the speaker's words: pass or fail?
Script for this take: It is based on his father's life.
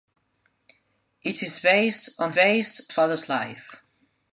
fail